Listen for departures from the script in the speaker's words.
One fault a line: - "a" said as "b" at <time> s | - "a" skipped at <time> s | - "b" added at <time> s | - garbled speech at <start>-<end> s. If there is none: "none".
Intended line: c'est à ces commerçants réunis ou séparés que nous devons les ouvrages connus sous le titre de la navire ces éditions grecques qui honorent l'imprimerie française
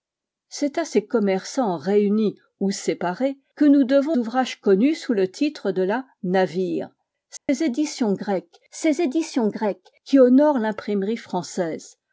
- "les" skipped at 4.2 s
- "ces éditions grecques" added at 8.7 s